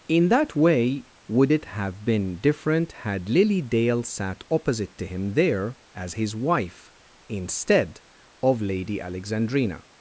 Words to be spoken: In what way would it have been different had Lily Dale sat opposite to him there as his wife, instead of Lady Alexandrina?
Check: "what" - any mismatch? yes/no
yes